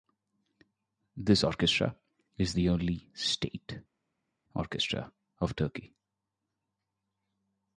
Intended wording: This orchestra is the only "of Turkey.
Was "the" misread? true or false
false